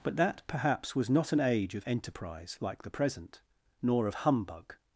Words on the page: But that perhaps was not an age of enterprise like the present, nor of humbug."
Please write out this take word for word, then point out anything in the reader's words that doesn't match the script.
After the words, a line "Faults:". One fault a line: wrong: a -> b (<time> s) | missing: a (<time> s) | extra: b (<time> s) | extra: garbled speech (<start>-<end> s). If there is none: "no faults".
But that perhaps was not an age of enterprise like the present, nor of humbug."
Faults:
no faults